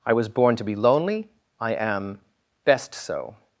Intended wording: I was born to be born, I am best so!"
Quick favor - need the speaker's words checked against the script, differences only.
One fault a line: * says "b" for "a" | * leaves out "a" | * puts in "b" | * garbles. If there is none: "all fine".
* says "lonely" for "born"